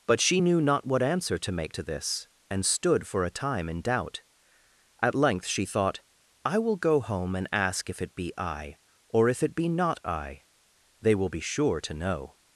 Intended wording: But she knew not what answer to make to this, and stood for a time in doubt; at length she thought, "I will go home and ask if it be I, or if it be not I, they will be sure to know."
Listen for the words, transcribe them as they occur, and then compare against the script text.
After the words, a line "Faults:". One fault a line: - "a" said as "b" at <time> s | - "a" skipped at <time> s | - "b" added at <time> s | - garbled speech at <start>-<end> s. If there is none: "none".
But she knew not what answer to make to this, and stood for a time in doubt; at length she thought, "I will go home and ask if it be I, or if it be not I, they will be sure to know."
Faults:
none